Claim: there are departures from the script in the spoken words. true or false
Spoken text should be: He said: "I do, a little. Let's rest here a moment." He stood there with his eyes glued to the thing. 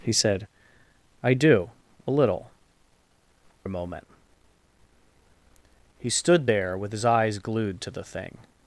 true